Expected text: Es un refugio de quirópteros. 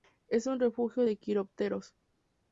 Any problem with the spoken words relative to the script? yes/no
no